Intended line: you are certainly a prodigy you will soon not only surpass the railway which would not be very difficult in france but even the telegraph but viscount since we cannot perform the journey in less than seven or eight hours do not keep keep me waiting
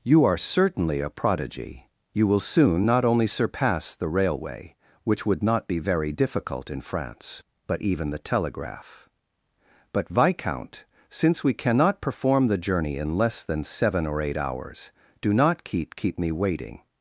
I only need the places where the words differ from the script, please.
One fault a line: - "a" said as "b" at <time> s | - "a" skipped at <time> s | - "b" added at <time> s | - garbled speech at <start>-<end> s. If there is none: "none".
none